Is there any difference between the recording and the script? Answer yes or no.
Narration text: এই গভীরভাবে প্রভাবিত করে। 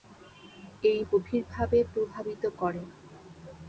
no